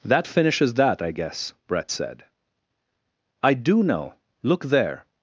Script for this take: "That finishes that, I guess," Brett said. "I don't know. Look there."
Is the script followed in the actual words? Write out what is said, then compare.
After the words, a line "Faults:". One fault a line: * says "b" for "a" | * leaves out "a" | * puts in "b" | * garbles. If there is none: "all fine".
"That finishes that, I guess," Brett said. "I do know. Look there."
Faults:
* says "do" for "don't"